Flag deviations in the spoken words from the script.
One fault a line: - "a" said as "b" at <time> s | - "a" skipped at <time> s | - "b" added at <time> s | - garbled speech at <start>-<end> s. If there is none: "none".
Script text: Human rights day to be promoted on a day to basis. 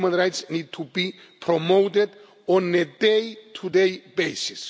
- "day" said as "need" at 0.5 s
- "day" added at 3.7 s